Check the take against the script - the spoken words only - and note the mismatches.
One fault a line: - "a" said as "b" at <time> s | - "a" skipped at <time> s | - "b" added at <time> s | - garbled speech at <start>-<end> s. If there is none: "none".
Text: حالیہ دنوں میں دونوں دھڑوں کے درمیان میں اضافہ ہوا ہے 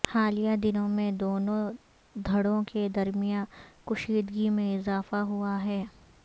- "کشیدگی" added at 3.9 s